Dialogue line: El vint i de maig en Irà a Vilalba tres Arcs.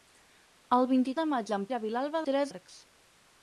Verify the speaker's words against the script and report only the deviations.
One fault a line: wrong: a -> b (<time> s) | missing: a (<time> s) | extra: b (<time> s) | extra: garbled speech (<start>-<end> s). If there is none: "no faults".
no faults